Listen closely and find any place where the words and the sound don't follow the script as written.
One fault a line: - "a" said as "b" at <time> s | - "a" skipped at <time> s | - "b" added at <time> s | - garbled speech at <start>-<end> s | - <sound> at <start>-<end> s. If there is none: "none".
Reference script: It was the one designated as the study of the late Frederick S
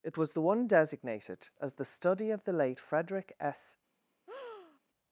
- breath at 4.3-4.8 s